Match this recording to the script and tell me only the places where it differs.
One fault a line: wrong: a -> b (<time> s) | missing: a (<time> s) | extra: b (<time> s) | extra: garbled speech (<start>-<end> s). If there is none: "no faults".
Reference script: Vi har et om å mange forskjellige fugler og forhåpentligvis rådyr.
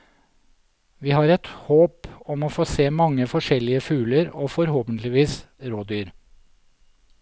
extra: håp (1.7 s)
extra: få se (2.5 s)